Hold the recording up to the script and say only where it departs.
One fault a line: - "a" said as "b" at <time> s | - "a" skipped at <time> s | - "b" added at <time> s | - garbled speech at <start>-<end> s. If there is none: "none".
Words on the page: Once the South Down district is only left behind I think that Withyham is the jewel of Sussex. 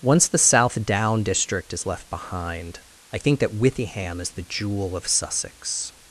- "only" skipped at 1.9 s